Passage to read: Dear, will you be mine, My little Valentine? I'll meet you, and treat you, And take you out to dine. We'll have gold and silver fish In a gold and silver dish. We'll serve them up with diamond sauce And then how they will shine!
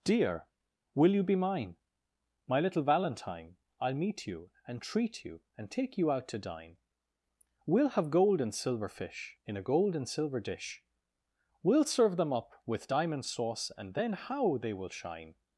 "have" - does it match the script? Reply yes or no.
yes